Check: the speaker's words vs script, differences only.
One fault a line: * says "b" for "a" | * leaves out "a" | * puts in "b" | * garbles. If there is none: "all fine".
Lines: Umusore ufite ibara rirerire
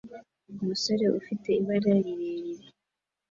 all fine